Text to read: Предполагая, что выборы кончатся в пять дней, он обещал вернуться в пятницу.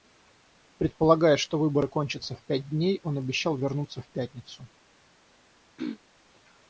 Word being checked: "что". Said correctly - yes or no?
yes